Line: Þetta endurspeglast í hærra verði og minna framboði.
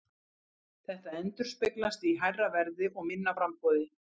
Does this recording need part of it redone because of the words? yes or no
no